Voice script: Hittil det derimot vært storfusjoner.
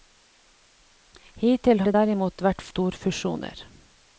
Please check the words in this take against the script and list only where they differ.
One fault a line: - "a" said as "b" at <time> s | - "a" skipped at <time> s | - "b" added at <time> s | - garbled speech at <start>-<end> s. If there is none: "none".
none